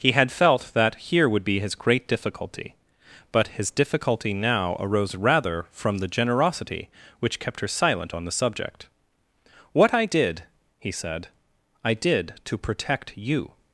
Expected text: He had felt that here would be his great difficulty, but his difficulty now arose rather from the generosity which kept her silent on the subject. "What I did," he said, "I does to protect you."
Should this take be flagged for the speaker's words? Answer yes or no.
yes